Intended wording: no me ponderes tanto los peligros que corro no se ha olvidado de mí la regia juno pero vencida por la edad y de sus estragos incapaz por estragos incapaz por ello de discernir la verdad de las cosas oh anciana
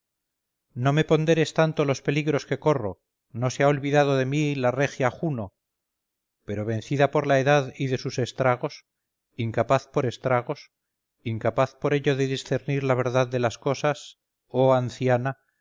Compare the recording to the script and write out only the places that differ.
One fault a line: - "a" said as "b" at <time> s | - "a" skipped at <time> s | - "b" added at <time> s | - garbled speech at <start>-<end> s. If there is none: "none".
none